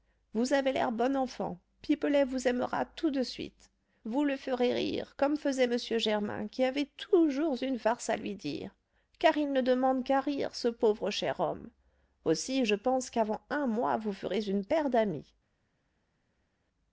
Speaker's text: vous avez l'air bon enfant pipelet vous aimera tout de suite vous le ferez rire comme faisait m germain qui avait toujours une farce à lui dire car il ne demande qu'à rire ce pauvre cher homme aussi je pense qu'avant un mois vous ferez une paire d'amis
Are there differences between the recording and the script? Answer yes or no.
no